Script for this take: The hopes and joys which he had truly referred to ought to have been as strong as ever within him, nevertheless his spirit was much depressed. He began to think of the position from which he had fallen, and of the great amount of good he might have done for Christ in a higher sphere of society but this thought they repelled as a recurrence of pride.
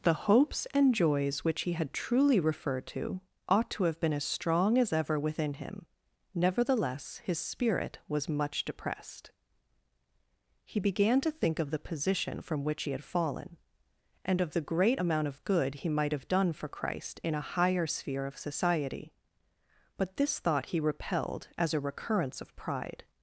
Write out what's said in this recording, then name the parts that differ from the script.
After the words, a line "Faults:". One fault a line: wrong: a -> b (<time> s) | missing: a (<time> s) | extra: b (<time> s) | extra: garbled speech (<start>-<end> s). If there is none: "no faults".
The hopes and joys which he had truly referred to ought to have been as strong as ever within him, nevertheless his spirit was much depressed. He began to think of the position from which he had fallen, and of the great amount of good he might have done for Christ in a higher sphere of society but this thought he repelled as a recurrence of pride.
Faults:
wrong: they -> he (20.7 s)